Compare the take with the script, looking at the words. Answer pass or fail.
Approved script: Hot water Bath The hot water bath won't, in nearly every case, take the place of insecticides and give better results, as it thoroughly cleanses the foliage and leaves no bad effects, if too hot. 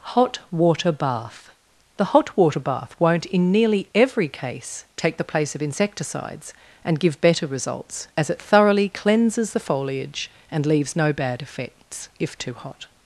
pass